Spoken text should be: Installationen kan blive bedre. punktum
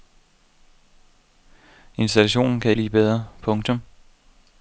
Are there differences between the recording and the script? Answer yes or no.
no